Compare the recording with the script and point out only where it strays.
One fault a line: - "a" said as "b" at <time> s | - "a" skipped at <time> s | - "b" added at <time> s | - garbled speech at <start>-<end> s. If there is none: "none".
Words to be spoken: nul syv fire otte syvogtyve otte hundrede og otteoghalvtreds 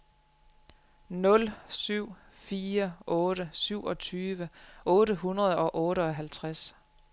none